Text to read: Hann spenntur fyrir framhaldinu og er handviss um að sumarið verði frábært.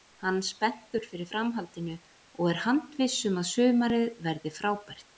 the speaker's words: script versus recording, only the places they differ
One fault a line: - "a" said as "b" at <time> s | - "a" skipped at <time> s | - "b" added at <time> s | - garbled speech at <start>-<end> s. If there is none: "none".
none